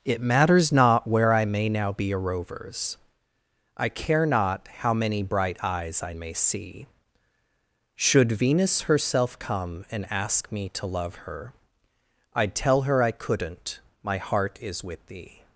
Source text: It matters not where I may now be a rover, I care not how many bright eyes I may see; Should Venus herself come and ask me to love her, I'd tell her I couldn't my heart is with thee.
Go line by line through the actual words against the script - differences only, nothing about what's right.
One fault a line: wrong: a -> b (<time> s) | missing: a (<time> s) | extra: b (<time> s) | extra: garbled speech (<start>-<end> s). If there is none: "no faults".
wrong: rover -> rovers (2.2 s)